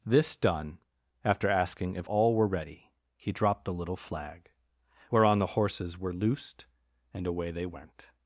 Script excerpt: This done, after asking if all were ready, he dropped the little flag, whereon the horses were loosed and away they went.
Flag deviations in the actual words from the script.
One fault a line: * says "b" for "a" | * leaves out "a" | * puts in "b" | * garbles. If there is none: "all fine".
all fine